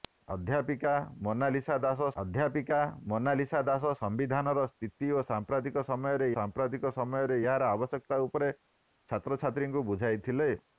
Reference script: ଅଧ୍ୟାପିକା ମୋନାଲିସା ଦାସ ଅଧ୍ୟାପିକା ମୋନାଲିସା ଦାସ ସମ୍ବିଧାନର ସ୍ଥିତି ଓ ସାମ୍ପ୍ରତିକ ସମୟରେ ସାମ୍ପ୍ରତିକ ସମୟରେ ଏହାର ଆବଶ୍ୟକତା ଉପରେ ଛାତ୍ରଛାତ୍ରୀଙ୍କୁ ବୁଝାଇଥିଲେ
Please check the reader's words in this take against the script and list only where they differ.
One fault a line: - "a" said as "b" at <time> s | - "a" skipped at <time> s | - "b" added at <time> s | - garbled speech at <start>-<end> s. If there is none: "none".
none